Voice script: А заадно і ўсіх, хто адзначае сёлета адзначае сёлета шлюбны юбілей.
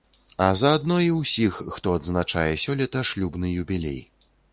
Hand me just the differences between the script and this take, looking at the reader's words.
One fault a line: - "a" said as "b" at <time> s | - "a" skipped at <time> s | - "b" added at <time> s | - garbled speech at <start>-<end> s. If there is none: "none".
- "адзначае сёлета" skipped at 3.0 s